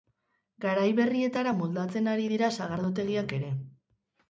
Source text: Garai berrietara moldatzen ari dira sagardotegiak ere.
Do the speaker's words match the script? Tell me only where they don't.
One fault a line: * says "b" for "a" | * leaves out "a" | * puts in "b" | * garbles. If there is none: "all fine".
all fine